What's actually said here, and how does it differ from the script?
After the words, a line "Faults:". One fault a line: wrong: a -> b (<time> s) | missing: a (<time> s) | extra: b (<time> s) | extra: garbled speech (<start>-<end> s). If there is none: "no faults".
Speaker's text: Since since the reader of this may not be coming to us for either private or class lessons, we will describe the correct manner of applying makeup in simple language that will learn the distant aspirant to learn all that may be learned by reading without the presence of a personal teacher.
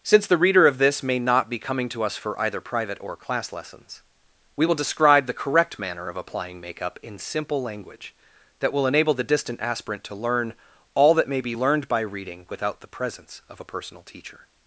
Since the reader of this may not be coming to us for either private or class lessons, we will describe the correct manner of applying makeup in simple language that will enable the distant aspirant to learn all that may be learned by reading without the presence of a personal teacher.
Faults:
missing: since (0.2 s)
wrong: learn -> enable (8.9 s)